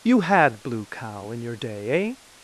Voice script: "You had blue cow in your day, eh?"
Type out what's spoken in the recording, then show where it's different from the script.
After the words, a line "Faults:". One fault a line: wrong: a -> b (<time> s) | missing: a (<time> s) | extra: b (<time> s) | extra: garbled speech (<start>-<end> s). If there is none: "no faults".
"You had blue cow in your day, eh?"
Faults:
no faults